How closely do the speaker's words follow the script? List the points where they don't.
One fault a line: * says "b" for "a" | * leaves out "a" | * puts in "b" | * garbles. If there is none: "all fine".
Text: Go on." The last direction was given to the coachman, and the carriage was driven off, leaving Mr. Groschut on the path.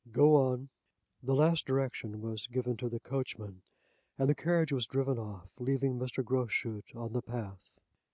all fine